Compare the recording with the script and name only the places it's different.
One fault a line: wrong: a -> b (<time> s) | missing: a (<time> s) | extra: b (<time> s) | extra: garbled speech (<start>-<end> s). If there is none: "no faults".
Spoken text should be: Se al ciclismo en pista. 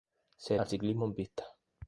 no faults